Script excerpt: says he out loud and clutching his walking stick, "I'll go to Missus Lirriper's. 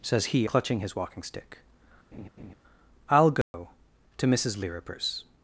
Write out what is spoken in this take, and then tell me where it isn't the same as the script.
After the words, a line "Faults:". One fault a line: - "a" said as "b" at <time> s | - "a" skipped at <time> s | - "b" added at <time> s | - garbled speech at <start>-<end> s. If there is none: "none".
says he clutching his walking stick, "I'll go to Missus Lirriper's.
Faults:
- "out loud and" skipped at 0.5 s